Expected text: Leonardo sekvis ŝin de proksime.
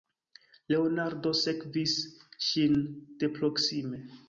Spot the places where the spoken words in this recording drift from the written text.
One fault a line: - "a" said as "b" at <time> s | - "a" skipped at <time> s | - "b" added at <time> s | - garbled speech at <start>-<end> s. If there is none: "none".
none